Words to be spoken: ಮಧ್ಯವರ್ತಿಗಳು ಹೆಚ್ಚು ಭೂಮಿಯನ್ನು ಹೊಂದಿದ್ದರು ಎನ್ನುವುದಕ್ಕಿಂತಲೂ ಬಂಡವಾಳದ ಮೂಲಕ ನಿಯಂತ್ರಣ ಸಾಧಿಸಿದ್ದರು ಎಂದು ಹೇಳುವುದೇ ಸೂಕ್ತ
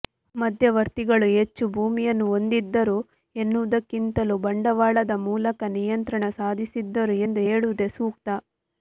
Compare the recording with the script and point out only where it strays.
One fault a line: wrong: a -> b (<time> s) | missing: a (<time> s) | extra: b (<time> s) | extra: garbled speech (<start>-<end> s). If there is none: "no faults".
no faults